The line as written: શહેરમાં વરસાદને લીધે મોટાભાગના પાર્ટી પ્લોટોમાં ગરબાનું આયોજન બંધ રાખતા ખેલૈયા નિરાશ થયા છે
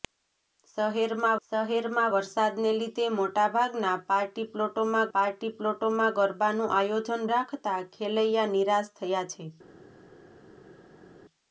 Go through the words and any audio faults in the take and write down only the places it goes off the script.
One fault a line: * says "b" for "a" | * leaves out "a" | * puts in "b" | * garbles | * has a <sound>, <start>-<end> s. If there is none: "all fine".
* puts in "શહેરમાં"
* puts in "પાર્ટી પ્લોટોમાં"
* leaves out "બંધ"